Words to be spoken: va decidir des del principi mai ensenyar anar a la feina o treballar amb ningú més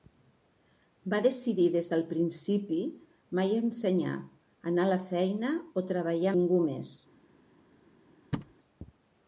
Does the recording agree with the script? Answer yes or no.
no